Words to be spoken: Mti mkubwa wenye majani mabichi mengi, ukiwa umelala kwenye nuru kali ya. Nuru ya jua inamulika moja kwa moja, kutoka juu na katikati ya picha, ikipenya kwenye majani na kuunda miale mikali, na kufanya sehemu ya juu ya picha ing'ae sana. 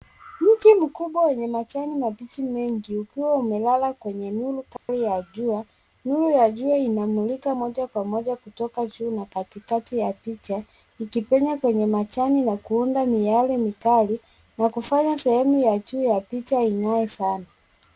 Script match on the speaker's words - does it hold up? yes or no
no